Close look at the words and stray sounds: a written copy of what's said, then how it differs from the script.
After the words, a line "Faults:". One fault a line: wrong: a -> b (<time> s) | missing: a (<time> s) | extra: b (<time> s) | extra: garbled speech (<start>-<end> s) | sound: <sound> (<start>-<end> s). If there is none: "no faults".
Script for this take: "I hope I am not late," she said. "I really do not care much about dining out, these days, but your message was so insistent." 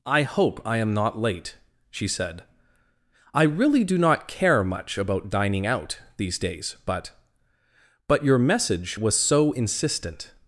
"I hope I am not late," she said. "I really do not care much about dining out, these days, but but your message was so insistent."
Faults:
extra: but (8.1 s)